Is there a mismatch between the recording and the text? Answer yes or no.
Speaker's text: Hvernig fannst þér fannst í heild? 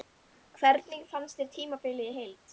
yes